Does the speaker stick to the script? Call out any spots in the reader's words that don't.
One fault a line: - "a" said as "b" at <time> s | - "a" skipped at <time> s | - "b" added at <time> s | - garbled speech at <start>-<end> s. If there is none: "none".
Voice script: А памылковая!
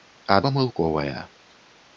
none